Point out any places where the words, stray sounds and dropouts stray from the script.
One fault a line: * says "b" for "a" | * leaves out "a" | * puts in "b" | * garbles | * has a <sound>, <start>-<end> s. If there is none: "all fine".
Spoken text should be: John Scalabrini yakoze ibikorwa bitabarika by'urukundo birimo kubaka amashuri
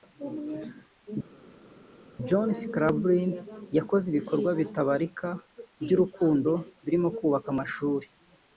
all fine